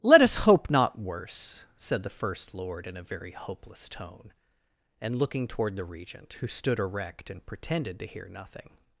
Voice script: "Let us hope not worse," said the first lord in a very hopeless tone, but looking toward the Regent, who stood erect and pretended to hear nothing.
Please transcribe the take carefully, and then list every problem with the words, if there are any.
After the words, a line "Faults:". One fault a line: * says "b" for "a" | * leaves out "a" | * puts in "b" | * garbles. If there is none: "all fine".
"Let us hope not worse," said the first lord in a very hopeless tone, and looking toward the Regent, who stood erect and pretended to hear nothing.
Faults:
* says "and" for "but"